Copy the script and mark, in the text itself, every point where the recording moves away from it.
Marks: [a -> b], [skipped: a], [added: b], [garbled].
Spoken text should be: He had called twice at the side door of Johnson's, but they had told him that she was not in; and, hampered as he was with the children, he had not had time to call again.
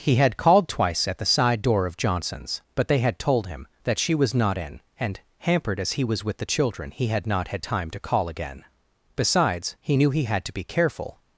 He had called twice at the side door of Johnson's, but they had told him that she was not in; and, hampered as he was with the children, he had not had time to call again. [added: Besides he knew he had to be careful]